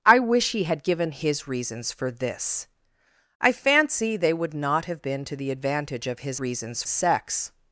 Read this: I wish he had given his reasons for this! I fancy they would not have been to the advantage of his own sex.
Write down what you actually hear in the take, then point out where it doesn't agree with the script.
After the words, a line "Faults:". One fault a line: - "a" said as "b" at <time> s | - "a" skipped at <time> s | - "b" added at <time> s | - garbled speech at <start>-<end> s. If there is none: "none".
I wish he had given his reasons for this! I fancy they would not have been to the advantage of his reasons sex.
Faults:
- "own" said as "reasons" at 6.4 s